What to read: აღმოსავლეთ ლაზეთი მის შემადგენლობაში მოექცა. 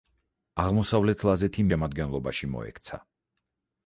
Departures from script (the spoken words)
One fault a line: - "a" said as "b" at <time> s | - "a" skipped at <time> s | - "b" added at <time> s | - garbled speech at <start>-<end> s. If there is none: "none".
- "მის" skipped at 1.7 s